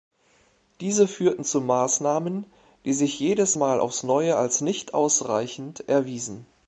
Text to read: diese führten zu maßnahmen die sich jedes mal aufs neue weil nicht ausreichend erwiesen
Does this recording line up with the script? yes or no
no